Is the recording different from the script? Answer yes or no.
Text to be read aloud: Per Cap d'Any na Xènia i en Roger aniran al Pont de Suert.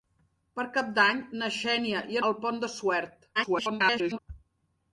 yes